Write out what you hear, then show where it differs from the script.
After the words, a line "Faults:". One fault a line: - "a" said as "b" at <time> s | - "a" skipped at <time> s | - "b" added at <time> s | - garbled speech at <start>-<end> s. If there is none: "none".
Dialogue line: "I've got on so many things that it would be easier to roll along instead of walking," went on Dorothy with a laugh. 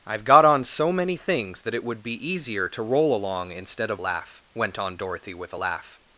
"I've got on so many things that it would be easier to roll along instead of laugh," went on Dorothy with a laugh.
Faults:
- "walking" said as "laugh" at 4.0 s